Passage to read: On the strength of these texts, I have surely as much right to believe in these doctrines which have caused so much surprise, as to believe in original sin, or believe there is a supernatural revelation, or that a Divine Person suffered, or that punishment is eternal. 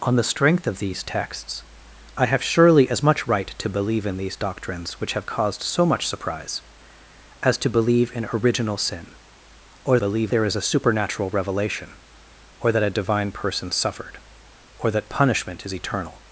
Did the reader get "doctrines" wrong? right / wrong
right